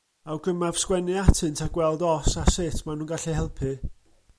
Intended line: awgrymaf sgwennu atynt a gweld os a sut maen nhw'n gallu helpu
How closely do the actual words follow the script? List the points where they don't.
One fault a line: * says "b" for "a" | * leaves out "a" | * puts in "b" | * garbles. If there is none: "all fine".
all fine